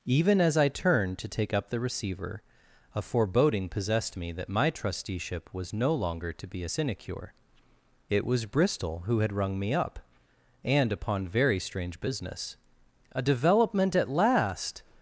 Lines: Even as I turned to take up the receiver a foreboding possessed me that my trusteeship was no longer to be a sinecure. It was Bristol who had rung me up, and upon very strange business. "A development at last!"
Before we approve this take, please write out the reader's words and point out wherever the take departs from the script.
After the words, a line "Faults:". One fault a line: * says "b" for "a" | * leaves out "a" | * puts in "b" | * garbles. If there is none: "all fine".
Even as I turned to take up the receiver a foreboding possessed me that my trusteeship was no longer to be a sinecure. It was Bristol who had rung me up, and upon very strange business. "A development at last!"
Faults:
all fine